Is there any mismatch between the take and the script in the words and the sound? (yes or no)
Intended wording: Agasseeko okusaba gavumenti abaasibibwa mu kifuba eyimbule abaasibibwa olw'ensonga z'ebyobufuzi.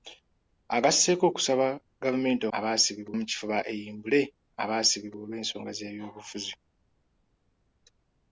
no